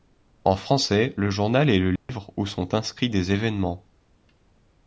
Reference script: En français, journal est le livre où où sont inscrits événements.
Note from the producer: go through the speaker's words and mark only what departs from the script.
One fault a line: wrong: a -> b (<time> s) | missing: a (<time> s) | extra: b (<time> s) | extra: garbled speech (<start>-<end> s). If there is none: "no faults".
extra: le (1.2 s)
missing: où (2.5 s)
extra: des (3.1 s)